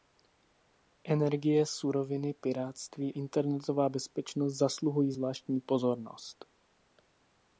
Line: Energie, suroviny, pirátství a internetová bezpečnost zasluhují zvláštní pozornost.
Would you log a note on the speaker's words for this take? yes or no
yes